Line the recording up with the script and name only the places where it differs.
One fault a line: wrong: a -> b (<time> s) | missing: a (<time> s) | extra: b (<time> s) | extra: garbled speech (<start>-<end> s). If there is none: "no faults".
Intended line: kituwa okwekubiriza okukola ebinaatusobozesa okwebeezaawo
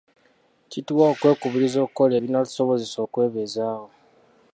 no faults